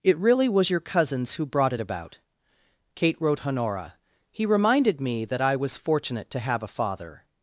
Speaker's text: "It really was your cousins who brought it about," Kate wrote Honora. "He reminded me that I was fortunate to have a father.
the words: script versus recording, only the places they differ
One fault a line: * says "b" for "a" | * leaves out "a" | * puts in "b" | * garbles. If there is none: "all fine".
all fine